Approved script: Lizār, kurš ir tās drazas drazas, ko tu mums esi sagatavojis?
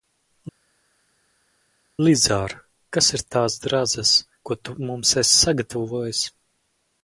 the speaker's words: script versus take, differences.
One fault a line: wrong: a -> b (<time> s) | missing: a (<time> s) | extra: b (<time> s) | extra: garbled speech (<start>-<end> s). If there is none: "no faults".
wrong: kurš -> kas (3.0 s)
missing: drazas (4.1 s)